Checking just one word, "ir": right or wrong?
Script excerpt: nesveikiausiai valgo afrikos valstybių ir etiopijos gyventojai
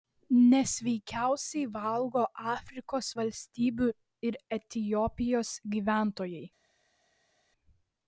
right